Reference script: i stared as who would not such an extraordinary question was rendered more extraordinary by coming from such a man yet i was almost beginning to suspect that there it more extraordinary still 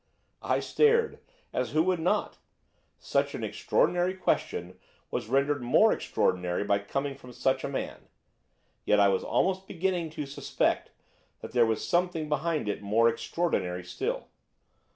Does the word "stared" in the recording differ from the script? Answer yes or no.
no